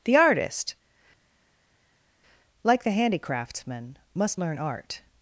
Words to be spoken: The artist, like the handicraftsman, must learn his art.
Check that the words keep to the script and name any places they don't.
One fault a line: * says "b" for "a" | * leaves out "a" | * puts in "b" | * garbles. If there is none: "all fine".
* leaves out "his"